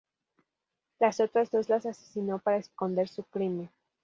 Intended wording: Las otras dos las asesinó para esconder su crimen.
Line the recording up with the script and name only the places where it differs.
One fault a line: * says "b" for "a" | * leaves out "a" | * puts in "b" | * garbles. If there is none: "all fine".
all fine